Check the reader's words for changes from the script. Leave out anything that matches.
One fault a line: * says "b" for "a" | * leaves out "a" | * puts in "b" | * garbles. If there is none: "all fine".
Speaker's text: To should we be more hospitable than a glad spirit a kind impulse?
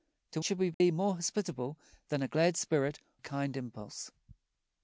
all fine